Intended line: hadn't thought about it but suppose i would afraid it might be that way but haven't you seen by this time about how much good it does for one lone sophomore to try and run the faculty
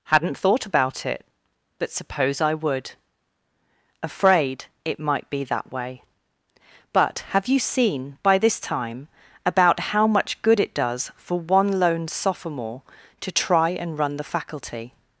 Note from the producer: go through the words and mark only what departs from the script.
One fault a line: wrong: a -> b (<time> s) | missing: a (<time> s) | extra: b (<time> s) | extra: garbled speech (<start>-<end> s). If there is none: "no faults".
wrong: haven't -> have (7.3 s)